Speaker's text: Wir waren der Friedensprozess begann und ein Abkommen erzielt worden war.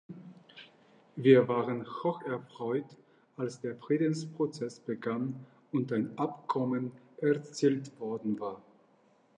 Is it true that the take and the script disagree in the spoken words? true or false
true